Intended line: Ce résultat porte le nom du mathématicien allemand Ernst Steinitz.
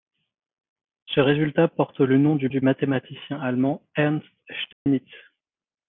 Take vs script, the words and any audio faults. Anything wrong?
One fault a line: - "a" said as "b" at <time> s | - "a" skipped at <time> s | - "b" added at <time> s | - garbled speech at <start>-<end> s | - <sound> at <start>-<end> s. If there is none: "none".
- "du" added at 2.5 s
- dropout at 4.7-4.9 s